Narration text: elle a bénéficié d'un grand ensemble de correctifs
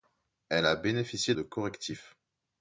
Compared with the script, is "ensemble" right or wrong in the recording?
wrong